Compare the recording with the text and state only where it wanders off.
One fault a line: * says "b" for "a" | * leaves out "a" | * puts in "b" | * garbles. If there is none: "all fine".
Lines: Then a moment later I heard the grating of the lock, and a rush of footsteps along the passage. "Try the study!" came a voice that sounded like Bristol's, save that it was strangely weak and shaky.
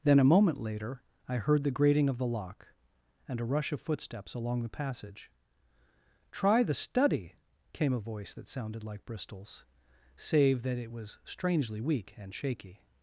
all fine